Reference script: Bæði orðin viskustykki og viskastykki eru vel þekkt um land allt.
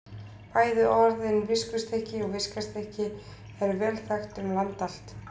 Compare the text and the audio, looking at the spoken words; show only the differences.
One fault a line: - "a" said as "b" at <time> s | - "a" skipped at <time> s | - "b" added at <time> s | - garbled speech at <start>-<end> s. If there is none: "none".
none